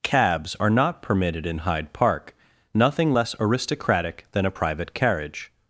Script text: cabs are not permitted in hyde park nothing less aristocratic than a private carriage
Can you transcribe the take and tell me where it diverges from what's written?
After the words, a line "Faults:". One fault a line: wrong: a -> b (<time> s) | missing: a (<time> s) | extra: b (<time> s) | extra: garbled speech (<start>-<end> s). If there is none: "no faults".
cabs are not permitted in hyde park nothing less aristocratic than a private carriage
Faults:
no faults